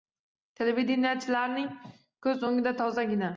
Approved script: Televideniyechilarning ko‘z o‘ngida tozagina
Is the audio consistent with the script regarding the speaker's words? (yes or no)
yes